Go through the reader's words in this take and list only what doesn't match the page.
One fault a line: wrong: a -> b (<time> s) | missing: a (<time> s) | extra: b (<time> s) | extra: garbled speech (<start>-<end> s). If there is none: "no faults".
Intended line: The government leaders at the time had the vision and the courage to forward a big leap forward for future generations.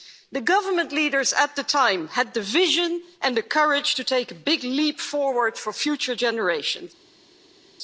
wrong: forward -> take (4.0 s)